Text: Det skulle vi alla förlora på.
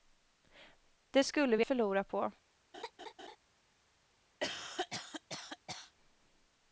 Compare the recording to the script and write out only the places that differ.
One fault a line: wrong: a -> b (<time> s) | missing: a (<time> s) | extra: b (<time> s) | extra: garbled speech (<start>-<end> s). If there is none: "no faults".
missing: alla (1.6 s)